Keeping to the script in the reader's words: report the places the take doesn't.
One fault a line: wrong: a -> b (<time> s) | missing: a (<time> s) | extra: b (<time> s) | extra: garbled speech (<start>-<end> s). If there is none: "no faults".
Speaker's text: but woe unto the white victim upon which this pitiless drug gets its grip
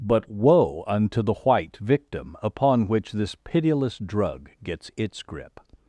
no faults